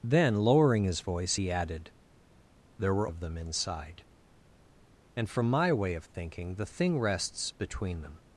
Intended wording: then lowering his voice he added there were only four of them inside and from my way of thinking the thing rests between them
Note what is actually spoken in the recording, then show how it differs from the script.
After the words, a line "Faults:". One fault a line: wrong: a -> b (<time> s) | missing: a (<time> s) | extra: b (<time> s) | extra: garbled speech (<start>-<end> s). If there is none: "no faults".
then lowering his voice he added there were of them inside and from my way of thinking the thing rests between them
Faults:
missing: only four (3.1 s)